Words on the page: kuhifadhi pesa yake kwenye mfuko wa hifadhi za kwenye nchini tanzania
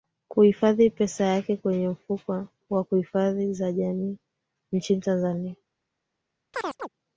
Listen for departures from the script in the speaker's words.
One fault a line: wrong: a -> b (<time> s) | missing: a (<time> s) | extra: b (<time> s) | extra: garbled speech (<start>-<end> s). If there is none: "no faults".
wrong: kwenye -> jamii (3.7 s)